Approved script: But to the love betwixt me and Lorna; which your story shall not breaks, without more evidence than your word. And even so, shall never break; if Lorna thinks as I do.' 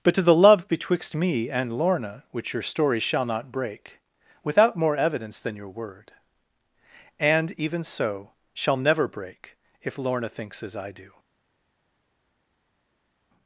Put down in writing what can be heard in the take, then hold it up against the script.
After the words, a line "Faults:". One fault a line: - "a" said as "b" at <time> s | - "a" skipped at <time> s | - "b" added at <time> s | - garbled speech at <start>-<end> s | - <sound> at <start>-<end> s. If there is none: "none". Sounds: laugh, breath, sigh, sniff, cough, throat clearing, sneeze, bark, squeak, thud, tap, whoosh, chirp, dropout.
But to the love betwixt me and Lorna; which your story shall not break, without more evidence than your word. And even so, shall never break; if Lorna thinks as I do.'
Faults:
- "breaks" said as "break" at 3.5 s